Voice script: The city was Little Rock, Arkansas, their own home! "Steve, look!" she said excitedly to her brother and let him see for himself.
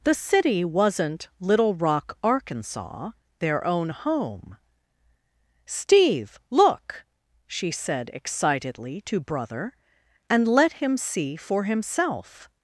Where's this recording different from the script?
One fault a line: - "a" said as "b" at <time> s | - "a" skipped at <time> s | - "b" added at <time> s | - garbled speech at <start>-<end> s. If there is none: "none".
- "was" said as "wasn't" at 0.7 s
- "her" skipped at 9.2 s